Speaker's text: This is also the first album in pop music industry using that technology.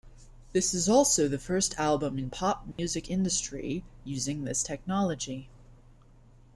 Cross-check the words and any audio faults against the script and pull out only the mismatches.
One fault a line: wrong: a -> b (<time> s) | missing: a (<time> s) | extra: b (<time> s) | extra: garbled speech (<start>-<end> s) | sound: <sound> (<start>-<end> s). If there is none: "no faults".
sound: dropout (2.7-2.8 s)
wrong: that -> this (4.4 s)